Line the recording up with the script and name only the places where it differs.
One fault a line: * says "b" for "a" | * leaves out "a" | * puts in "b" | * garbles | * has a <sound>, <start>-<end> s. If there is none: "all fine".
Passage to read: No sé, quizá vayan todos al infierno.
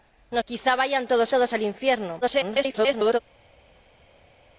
* leaves out "sé"
* puts in "todos"
* garbles